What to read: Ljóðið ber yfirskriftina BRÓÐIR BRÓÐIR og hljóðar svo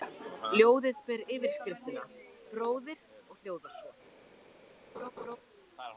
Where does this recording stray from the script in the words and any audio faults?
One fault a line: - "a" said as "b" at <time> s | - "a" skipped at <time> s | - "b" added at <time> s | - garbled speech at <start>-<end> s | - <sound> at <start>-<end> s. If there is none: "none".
- "BRÓÐIR" skipped at 3.0 s
- laugh at 4.9-5.4 s